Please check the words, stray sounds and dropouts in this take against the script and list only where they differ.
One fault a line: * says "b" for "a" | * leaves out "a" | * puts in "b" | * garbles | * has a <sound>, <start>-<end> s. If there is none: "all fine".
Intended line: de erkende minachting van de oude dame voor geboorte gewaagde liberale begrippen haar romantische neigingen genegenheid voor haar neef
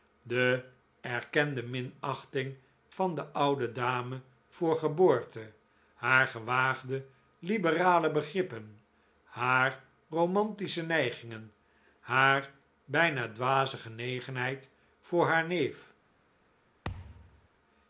* puts in "haar"
* puts in "haar bijna dwaze"
* has a thud, 16.8-17.5 s